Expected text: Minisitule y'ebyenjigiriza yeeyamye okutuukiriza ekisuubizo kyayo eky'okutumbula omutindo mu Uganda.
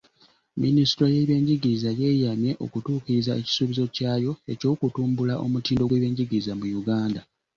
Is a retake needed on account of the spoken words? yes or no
yes